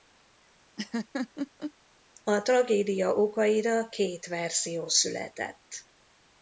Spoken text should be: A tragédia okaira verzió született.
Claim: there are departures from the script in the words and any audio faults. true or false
true